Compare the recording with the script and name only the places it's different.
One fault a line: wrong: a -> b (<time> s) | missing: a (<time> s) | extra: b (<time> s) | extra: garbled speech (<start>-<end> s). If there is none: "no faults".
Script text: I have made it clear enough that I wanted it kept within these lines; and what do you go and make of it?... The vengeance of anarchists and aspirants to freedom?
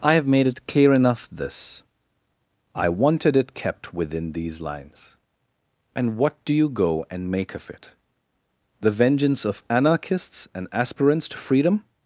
wrong: that -> this (1.3 s)